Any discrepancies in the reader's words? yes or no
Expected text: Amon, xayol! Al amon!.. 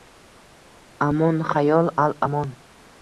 no